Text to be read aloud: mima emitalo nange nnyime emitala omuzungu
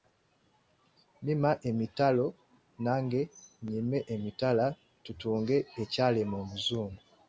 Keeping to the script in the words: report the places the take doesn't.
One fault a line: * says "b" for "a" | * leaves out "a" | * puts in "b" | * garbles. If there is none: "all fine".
* puts in "tutunge ekyalema"